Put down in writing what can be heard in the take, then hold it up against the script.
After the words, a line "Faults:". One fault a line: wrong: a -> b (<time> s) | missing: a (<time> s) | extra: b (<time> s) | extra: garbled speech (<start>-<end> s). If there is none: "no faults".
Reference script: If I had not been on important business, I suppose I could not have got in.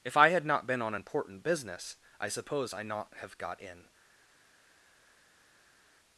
If I had not been on important business, I suppose I not have got in.
Faults:
missing: could (2.8 s)